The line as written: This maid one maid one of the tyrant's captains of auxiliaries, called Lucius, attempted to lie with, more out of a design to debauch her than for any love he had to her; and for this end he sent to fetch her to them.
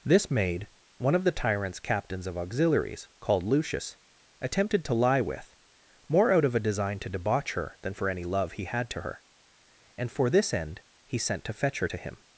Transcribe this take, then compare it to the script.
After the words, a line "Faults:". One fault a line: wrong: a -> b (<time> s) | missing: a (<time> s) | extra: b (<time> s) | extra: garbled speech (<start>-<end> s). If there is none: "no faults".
This maid one of the tyrant's captains of auxiliaries, called Lucius, attempted to lie with, more out of a design to debauch her than for any love he had to her; and for this end he sent to fetch her to him.
Faults:
missing: maid one (1.1 s)
wrong: them -> him (12.0 s)